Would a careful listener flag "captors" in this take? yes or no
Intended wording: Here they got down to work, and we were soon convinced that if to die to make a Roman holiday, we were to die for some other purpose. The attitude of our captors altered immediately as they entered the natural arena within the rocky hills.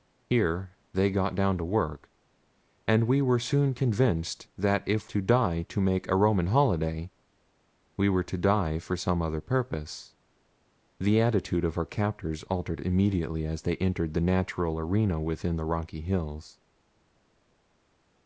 no